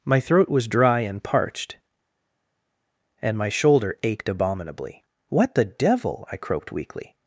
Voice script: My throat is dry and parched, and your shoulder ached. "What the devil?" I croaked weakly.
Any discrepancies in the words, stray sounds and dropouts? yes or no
yes